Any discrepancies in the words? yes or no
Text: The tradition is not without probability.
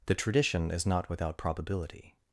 no